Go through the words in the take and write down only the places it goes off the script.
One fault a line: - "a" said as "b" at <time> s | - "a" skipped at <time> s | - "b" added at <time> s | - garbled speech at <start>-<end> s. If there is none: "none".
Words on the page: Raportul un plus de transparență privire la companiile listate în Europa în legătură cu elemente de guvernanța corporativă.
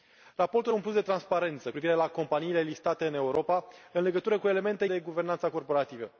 none